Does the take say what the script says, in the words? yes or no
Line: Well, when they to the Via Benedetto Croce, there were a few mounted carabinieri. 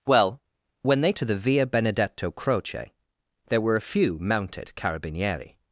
yes